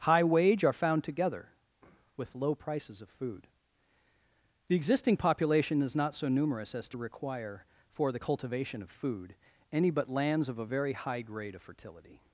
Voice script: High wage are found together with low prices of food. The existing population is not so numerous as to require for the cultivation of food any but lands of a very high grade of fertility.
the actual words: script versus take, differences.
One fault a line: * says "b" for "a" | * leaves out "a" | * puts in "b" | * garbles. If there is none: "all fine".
all fine